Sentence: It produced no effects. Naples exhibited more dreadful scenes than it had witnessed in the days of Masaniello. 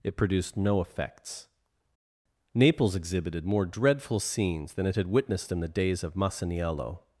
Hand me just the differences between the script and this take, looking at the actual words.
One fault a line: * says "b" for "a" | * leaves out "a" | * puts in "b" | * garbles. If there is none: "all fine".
all fine